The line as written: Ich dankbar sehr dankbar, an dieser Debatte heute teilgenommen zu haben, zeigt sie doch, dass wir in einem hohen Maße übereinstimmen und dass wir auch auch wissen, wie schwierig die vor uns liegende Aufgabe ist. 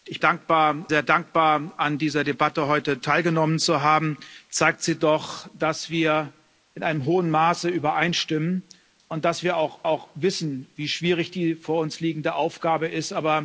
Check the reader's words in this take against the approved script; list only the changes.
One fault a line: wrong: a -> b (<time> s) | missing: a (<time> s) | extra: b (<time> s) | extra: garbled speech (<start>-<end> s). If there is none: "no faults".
no faults